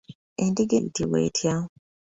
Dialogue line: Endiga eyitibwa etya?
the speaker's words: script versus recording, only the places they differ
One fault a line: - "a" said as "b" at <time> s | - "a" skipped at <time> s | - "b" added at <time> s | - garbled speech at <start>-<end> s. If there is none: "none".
none